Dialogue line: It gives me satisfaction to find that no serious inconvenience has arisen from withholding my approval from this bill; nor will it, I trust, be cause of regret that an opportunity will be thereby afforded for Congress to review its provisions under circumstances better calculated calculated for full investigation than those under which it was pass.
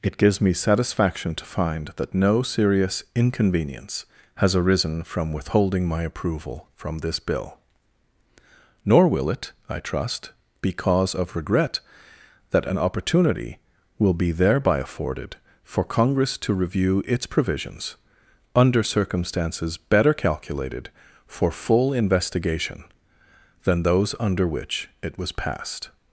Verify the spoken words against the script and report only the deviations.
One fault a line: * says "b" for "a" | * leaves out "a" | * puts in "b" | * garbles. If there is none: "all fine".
* leaves out "calculated"
* says "passed" for "pass"